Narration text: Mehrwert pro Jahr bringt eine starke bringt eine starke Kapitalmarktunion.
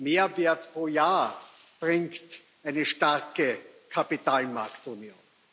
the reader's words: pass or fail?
fail